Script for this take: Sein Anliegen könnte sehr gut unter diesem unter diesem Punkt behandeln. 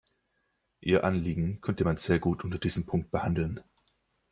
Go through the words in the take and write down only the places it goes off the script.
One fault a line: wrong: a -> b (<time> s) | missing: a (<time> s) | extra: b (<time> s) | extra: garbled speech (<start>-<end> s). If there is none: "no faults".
wrong: Sein -> Ihr (0.8 s)
extra: man (1.8 s)
missing: unter diesem (2.8 s)